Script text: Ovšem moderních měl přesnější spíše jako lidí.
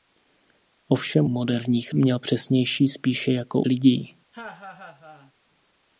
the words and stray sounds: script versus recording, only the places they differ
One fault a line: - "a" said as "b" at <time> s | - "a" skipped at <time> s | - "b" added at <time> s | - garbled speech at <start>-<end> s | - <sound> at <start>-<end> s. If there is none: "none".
- laugh at 4.3-5.3 s